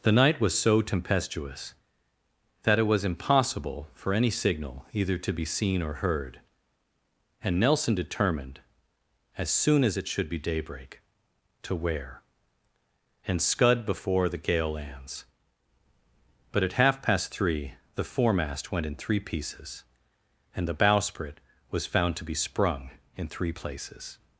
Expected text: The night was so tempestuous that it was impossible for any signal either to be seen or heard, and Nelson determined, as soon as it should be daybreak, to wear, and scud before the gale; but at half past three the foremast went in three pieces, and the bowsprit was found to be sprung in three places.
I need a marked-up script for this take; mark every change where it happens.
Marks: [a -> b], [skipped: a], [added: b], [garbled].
The night was so tempestuous that it was impossible for any signal either to be seen or heard, and Nelson determined, as soon as it should be daybreak, to wear, and scud before the gale; [added: lands] but at half past three the foremast went in three pieces, and the bowsprit was found to be sprung in three places.